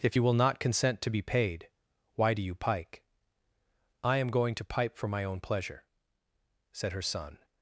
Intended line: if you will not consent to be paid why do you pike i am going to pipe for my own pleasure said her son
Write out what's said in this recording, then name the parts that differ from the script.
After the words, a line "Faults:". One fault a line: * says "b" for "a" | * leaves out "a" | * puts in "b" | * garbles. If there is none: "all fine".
if you will not consent to be paid why do you pike i am going to pipe for my own pleasure said her son
Faults:
all fine